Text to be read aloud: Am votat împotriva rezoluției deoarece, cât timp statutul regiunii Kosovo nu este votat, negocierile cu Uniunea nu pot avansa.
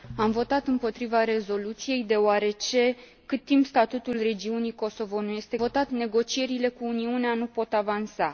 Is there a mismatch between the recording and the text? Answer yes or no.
no